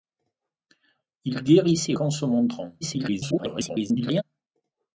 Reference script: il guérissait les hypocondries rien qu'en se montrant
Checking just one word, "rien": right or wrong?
wrong